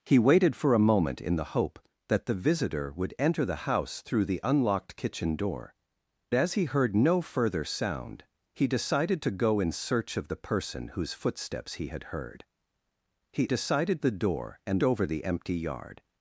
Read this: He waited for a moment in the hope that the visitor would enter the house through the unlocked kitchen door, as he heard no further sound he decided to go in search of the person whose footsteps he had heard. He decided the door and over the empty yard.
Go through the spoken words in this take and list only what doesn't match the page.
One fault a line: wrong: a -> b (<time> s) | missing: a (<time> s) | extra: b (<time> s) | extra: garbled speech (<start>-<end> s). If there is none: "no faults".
no faults